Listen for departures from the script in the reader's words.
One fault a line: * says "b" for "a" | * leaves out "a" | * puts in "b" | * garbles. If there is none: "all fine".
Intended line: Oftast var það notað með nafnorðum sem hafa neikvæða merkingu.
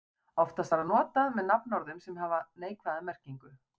all fine